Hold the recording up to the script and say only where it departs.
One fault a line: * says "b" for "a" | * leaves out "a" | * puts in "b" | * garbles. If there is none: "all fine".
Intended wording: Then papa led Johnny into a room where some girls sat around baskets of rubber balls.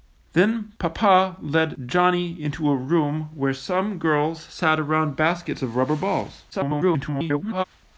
* garbles